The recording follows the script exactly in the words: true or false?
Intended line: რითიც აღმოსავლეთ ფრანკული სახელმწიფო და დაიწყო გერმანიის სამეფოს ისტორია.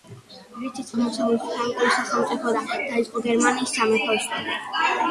true